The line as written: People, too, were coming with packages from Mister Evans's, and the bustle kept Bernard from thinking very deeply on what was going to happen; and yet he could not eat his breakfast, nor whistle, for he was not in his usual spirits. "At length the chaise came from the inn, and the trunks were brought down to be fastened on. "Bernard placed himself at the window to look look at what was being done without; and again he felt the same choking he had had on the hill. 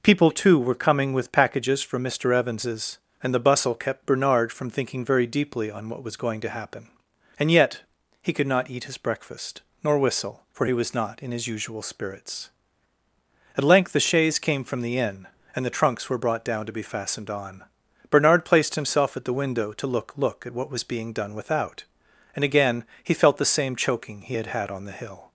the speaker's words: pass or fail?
pass